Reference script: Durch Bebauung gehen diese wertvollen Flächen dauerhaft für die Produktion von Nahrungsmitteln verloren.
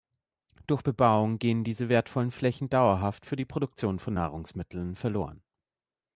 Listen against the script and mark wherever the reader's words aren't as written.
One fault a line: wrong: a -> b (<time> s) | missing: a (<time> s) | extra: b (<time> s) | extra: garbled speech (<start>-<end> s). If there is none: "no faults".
no faults